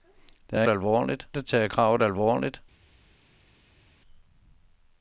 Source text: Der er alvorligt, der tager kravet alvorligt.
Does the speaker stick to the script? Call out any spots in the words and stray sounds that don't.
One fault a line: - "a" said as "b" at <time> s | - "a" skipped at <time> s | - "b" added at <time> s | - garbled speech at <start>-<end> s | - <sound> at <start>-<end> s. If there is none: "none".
none